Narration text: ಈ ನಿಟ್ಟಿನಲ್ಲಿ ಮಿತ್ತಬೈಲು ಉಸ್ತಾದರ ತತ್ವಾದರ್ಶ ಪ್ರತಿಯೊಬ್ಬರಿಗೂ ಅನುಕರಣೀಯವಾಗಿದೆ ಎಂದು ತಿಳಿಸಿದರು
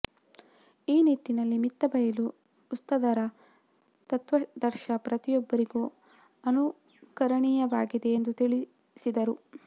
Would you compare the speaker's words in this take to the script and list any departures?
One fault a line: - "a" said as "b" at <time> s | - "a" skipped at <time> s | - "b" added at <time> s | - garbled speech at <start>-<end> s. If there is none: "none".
none